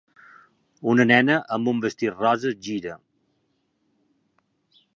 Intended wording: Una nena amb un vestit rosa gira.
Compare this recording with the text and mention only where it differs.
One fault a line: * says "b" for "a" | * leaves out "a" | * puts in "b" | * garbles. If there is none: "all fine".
all fine